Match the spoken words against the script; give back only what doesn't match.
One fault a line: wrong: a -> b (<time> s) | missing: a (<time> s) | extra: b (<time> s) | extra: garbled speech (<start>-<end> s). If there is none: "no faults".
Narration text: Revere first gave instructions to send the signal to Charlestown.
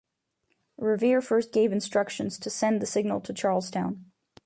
no faults